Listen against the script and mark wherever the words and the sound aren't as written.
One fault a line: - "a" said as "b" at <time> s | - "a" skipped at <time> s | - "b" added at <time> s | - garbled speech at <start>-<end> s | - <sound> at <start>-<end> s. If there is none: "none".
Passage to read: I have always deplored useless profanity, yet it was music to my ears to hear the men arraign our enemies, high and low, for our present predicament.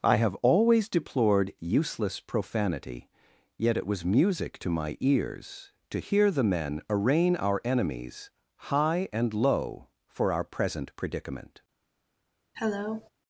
- cough at 12.5-13.1 s